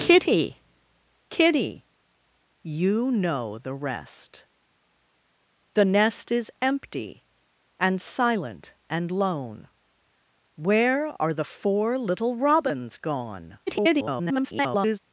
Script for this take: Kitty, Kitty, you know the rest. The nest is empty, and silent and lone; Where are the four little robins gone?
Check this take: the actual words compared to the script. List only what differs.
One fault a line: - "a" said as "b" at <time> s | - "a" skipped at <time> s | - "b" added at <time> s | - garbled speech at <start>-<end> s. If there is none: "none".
- garbled speech at 13.7-15.0 s